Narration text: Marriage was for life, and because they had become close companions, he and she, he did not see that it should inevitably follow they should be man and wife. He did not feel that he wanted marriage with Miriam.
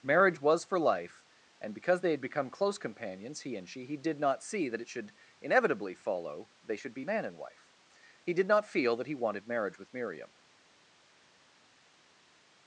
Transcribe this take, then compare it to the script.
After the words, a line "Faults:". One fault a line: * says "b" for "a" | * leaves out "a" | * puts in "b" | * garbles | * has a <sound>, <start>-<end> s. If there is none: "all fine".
Marriage was for life, and because they had become close companions, he and she, he did not see that it should inevitably follow they should be man and wife. He did not feel that he wanted marriage with Miriam.
Faults:
all fine